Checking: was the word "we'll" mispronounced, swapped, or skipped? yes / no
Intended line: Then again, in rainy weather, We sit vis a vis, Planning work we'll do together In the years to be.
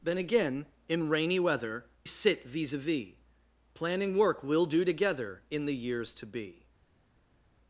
no